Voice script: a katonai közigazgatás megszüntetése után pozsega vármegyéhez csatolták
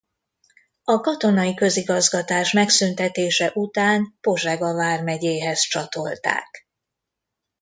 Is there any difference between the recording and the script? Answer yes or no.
no